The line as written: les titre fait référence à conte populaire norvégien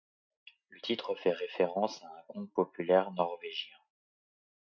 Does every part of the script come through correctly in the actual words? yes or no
no